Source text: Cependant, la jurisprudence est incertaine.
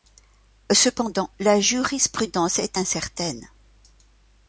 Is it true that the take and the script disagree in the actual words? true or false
false